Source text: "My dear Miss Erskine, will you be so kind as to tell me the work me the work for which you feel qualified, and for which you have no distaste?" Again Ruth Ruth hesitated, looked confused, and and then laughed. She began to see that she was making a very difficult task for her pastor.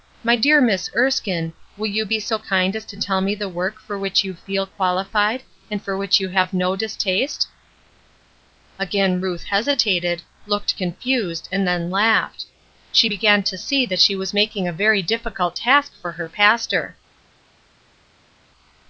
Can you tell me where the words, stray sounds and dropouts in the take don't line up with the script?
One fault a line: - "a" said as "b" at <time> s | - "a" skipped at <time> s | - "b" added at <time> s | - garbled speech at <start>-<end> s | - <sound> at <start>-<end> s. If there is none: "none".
- "me the work" skipped at 3.8 s
- "Ruth" skipped at 9.4 s
- "and" skipped at 11.7 s